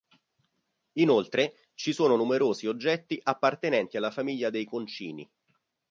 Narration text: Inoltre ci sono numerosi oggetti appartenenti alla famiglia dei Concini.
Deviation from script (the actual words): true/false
false